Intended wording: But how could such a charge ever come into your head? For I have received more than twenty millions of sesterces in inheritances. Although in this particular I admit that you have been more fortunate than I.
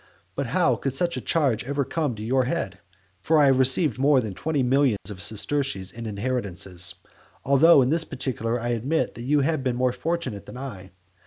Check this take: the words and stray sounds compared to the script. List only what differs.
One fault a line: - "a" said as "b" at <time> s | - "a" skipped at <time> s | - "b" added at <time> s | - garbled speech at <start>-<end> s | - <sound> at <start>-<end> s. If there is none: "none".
- dropout at 5.0-5.1 s